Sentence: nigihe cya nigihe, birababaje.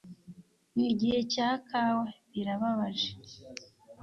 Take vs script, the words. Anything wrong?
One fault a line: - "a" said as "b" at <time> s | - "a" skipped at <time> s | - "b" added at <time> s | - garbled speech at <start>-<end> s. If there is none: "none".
- "nigihe" said as "kawa" at 1.7 s